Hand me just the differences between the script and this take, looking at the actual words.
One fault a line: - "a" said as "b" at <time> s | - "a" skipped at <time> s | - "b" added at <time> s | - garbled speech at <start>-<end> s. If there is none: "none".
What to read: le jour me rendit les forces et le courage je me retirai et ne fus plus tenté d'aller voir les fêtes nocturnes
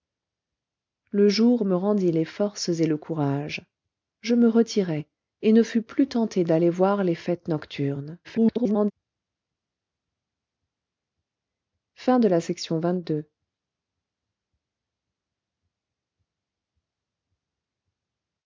- garbled speech at 8.2-8.9 s